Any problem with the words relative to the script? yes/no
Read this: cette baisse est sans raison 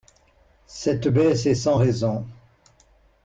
no